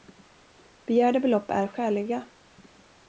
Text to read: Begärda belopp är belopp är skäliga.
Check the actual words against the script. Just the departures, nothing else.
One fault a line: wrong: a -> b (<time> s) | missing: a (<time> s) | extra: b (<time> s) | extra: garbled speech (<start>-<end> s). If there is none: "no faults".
missing: belopp är (1.7 s)